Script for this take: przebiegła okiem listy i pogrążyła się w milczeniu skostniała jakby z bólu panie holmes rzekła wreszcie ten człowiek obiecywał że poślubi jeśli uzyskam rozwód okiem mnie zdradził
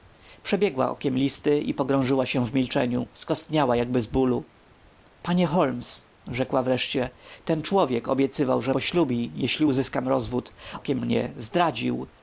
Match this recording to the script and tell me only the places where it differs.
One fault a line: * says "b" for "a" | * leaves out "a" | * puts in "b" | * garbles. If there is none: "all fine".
all fine